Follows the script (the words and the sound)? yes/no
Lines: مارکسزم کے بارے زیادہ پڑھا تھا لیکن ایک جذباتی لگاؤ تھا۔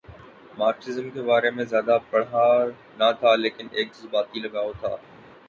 no